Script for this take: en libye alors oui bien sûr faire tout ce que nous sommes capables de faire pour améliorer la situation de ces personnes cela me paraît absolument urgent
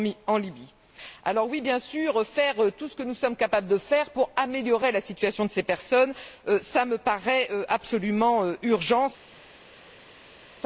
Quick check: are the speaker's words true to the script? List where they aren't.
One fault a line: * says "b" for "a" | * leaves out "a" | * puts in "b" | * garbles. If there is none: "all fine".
all fine